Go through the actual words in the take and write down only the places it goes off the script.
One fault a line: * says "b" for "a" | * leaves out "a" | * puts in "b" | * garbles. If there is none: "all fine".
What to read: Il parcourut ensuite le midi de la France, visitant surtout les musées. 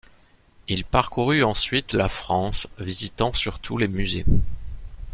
* leaves out "le midi"